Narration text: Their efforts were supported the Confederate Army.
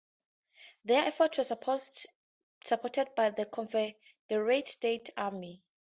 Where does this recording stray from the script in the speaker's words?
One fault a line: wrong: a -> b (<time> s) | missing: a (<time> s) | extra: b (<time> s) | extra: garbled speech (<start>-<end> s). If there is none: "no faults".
extra: by (3.2 s)
extra: States (4.7 s)